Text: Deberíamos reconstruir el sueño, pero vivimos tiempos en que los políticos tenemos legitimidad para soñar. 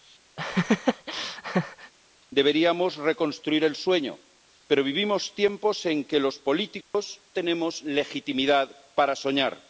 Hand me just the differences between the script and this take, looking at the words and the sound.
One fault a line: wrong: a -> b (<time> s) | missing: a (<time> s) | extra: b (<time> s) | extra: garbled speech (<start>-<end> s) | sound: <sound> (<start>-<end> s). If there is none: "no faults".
sound: laugh (0.4-1.9 s)
sound: dropout (6.8-6.9 s)